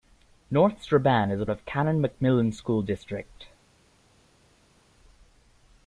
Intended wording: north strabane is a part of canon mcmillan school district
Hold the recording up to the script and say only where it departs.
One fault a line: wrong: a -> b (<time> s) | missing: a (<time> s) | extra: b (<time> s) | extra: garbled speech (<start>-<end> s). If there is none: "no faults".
missing: part (1.4 s)